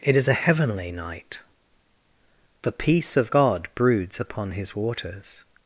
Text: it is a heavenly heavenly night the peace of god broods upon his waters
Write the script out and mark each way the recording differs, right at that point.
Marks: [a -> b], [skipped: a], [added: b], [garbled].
it is a heavenly [skipped: heavenly] night the peace of god broods upon his waters